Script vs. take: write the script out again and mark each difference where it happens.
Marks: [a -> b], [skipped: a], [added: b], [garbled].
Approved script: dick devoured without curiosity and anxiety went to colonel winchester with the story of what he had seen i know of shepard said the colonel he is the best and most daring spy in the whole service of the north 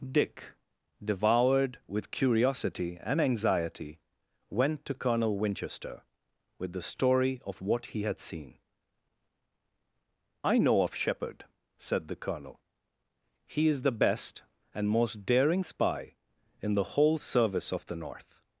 dick devoured [without -> with] curiosity and anxiety went to colonel winchester with the story of what he had seen i know of shepard said the colonel he is the best and most daring spy in the whole service of the north